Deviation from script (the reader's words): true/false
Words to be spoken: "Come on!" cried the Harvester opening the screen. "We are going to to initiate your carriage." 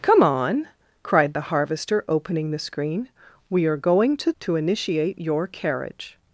false